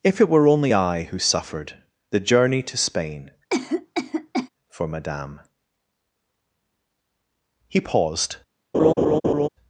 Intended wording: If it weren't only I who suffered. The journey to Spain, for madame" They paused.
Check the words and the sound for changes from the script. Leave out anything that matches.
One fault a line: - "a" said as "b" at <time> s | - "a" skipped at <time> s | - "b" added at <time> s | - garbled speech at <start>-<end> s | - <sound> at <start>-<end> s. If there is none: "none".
- "weren't" said as "were" at 0.3 s
- cough at 3.5-4.5 s
- "They" said as "He" at 7.7 s
- laugh at 8.7-9.5 s